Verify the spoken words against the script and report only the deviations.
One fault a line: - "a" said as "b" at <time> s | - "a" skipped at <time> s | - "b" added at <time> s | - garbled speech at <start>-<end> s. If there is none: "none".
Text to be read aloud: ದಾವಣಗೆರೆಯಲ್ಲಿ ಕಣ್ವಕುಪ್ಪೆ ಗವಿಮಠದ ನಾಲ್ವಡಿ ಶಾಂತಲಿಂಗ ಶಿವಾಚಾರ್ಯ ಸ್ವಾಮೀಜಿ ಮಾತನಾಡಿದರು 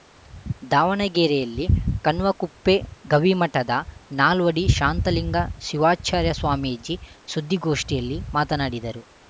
- "ಸುದ್ದಿಗೋಷ್ಠಿಯಲ್ಲಿ" added at 7.3 s